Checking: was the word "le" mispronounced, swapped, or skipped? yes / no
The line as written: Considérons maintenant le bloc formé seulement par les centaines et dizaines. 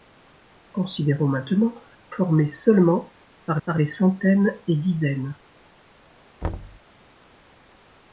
yes